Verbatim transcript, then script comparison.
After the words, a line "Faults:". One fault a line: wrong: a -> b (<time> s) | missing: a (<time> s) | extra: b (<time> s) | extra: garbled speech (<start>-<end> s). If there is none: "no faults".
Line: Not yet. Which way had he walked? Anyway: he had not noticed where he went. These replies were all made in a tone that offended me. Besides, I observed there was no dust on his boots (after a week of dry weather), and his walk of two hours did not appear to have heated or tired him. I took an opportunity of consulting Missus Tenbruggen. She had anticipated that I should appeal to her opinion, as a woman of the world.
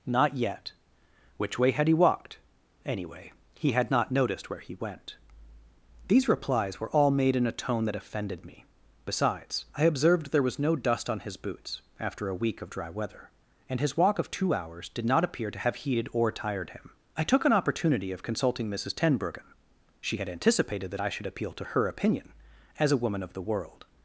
Not yet. Which way had he walked? Anyway: he had not noticed where he went. These replies were all made in a tone that offended me. Besides, I observed there was no dust on his boots (after a week of dry weather), and his walk of two hours did not appear to have heated or tired him. I took an opportunity of consulting Missus Tenbruggen. She had anticipated that I should appeal to her opinion, as a woman of the world.
Faults:
no faults